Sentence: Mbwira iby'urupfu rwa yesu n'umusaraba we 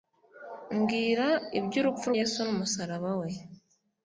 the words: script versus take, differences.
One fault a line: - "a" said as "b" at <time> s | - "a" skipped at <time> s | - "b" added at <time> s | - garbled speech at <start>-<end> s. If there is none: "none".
- "rwa" skipped at 2.1 s